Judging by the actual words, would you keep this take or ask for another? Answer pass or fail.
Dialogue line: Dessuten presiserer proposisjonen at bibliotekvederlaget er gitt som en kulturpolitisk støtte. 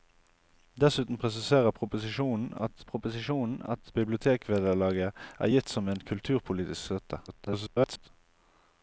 fail